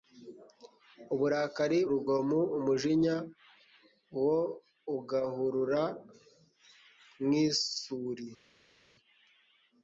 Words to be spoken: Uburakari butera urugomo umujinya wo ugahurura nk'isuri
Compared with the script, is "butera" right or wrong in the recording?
wrong